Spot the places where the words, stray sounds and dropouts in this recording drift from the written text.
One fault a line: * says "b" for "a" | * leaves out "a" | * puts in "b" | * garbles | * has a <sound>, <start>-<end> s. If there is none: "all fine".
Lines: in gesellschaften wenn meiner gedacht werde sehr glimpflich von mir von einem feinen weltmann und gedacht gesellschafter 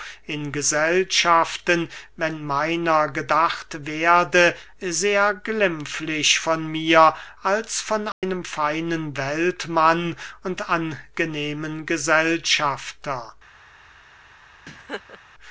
* puts in "als"
* has a dropout, 8.1-8.2 s
* says "angenehmen" for "gedacht"
* has a laugh, 14.7-15.2 s